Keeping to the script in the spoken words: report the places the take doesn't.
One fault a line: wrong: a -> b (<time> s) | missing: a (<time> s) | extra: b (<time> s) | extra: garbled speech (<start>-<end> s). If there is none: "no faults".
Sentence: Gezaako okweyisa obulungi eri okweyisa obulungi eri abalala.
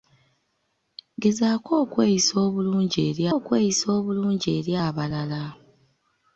no faults